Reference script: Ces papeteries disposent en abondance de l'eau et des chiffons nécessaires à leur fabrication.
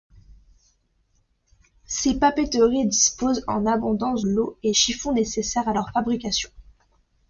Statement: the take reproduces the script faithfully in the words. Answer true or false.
false